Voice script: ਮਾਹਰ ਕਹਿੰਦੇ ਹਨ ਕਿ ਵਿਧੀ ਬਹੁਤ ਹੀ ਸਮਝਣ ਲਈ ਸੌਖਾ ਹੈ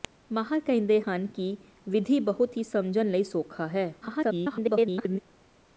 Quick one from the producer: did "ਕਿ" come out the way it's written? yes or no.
yes